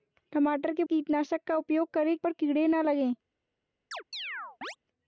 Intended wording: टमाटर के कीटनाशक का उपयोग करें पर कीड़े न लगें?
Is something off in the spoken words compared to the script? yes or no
no